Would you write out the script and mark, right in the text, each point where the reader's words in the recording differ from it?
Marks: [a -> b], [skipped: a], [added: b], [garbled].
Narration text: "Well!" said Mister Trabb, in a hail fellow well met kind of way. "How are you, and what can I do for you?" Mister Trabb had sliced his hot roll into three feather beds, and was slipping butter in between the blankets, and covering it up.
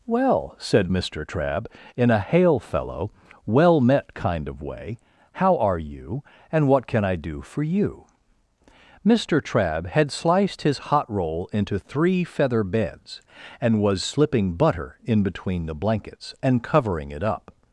"Well!" said Mister Trabb, in a hail fellow well met kind of way. "How are you, and what can I do for you?" Mister Trabb had sliced his hot roll into three feather beds, and was slipping butter in between the blankets, and covering it up.